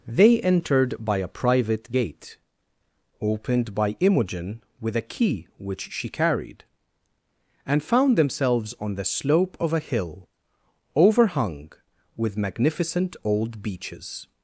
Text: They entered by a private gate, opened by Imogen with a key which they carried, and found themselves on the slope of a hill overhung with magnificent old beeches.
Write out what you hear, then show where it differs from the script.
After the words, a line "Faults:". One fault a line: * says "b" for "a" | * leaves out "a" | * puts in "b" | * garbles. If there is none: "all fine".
They entered by a private gate, opened by Imogen with a key which she carried, and found themselves on the slope of a hill overhung with magnificent old beeches.
Faults:
* says "she" for "they"